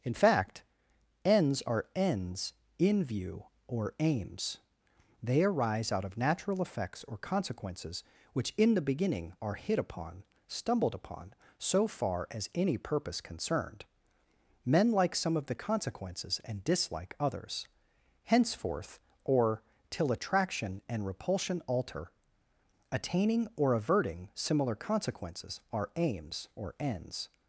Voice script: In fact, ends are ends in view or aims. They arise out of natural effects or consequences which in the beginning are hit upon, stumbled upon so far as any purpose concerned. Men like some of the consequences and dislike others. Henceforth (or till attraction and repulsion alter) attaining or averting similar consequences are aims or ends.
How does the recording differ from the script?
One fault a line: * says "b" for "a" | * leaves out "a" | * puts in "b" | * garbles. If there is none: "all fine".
all fine